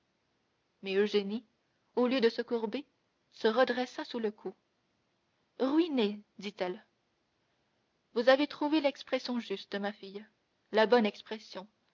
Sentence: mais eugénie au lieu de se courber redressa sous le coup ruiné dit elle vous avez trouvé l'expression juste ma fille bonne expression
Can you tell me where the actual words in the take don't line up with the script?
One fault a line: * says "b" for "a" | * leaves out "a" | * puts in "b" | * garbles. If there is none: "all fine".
* puts in "se"
* puts in "la"